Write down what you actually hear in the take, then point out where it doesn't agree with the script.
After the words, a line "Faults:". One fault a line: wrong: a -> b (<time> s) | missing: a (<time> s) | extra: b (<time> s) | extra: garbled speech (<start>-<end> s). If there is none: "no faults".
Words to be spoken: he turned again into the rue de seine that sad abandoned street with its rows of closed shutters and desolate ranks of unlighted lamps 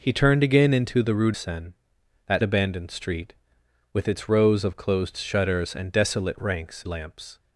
he turned again into the rue seine that abandoned street with its rows of closed shutters and desolate ranks lamps
Faults:
missing: de (1.3 s)
missing: sad (2.4 s)
missing: of unlighted (6.8 s)